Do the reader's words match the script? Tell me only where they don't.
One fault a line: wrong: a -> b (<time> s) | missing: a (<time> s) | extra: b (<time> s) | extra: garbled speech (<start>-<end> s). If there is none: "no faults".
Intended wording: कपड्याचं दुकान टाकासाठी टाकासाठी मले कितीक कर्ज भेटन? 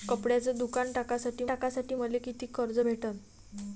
no faults